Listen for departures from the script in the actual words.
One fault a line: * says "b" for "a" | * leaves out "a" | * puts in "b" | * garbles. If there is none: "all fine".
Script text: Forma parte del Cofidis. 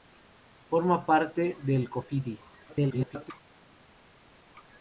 * garbles